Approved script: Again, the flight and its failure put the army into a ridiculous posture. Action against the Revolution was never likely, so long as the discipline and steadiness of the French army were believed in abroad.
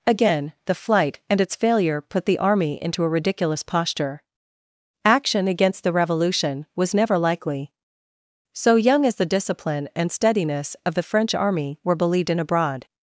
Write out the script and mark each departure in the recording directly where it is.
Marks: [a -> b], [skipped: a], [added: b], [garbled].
Again, the flight and its failure put the army into a ridiculous posture. Action against the Revolution was never likely, so [long -> young] as the discipline and steadiness of the French army were believed in abroad.